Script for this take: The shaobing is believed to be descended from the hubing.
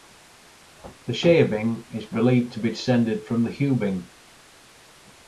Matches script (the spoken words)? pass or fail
pass